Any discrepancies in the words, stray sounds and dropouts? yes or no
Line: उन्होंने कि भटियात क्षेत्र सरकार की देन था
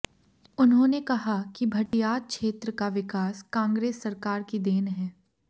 yes